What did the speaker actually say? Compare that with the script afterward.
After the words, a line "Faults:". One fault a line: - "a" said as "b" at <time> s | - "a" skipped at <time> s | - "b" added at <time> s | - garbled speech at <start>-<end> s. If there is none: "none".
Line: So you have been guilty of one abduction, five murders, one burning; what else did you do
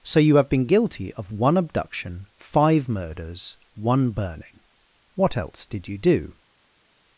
So you have been guilty of one abduction, five murders, one burning; what else did you do
Faults:
none